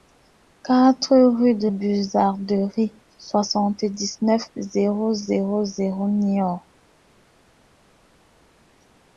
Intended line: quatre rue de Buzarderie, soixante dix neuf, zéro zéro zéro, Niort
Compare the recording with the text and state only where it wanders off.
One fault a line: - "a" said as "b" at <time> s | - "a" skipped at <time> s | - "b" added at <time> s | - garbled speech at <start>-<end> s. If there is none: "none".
none